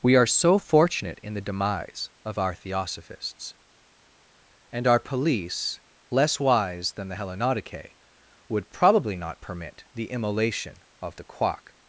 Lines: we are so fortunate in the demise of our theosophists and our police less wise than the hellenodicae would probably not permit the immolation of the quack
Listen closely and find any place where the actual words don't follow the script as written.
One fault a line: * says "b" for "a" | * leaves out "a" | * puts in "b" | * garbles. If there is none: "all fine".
all fine